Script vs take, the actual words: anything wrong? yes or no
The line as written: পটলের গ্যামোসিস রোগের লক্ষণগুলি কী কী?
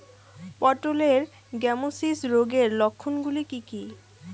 no